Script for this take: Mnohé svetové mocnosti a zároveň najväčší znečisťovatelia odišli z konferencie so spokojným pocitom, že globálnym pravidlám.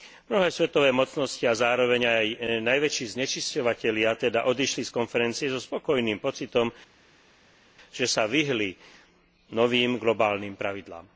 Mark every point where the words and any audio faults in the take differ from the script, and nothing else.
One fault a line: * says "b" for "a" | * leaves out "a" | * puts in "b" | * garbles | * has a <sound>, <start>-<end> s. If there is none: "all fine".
* puts in "aj"
* puts in "teda"
* puts in "sa vyhli novým"